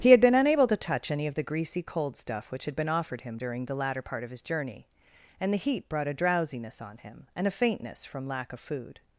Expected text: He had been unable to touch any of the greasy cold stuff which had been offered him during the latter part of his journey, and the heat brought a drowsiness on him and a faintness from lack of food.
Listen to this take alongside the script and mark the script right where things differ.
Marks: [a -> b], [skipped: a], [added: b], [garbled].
He had been unable to touch any of the greasy cold stuff which had been offered him during the latter part of his journey, and the heat brought a drowsiness on him and a faintness from lack of food.